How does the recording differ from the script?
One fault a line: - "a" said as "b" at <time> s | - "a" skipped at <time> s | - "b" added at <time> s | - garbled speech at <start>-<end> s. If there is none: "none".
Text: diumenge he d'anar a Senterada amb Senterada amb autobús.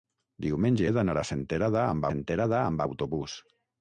none